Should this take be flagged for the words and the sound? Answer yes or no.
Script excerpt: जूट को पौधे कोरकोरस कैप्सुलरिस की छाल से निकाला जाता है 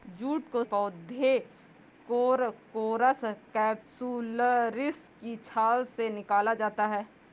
no